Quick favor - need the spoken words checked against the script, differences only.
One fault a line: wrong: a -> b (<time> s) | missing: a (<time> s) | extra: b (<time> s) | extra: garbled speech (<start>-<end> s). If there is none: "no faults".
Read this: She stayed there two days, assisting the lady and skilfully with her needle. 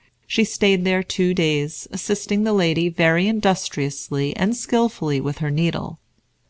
extra: very industriously (2.9 s)